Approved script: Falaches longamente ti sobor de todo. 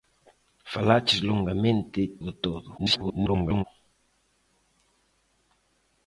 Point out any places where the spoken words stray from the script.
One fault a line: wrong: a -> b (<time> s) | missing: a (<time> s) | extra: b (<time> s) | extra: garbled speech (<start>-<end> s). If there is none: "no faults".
missing: ti sobor (2.0 s)
extra: garbled speech (2.8-3.6 s)